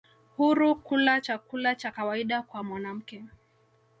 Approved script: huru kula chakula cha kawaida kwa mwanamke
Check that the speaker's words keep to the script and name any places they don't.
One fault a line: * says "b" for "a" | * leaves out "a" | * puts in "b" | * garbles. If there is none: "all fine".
all fine